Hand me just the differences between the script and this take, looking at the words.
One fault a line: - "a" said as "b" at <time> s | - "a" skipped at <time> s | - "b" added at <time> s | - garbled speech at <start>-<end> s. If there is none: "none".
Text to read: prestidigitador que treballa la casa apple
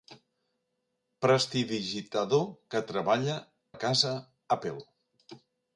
none